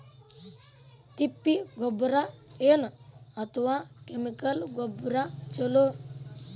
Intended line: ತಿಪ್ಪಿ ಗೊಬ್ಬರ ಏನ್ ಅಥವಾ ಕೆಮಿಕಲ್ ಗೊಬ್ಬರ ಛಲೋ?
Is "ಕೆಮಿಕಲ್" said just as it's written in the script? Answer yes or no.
yes